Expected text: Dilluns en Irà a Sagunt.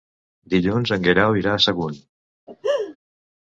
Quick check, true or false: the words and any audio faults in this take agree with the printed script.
false